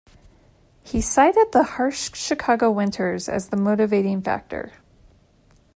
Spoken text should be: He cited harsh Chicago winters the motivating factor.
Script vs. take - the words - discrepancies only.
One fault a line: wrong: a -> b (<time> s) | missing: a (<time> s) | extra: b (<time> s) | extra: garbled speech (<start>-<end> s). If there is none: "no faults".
extra: the (1.5 s)
extra: as (3.3 s)